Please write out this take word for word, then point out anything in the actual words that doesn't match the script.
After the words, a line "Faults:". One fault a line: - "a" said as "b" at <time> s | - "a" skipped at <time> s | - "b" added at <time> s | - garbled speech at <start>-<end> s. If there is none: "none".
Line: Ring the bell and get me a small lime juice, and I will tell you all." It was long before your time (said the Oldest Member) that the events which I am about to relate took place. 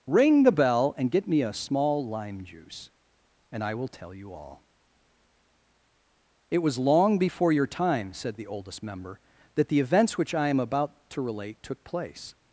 Ring the bell and get me a small lime juice, and I will tell you all." It was long before your time (said the Oldest Member) that the events which I am about to relate took place.
Faults:
none